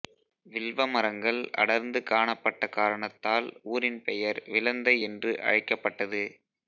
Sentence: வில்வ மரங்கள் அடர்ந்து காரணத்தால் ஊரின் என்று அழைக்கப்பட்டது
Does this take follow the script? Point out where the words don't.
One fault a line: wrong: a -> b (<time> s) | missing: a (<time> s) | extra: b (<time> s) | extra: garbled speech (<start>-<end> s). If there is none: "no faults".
extra: காணப்பட்ட (2.0 s)
extra: பெயர் விளந்தை (4.1 s)